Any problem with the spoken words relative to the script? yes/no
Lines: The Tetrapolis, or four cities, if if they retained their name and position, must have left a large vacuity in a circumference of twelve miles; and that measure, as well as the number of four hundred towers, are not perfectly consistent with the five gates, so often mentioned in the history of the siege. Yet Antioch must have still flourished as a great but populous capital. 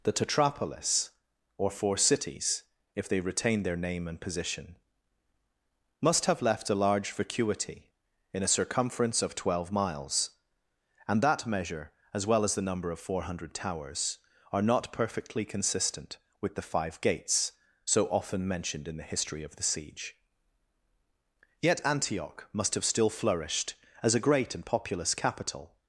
yes